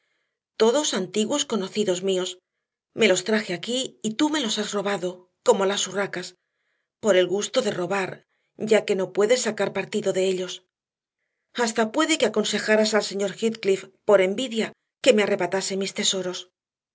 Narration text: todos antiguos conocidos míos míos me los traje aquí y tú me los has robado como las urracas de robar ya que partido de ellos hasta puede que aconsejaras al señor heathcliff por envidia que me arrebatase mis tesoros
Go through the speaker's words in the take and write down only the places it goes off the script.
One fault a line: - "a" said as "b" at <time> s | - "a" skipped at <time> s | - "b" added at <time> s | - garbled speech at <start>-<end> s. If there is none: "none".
- "míos" skipped at 2.3 s
- "por el gusto" added at 7.0 s
- "no puedes sacar" added at 9.0 s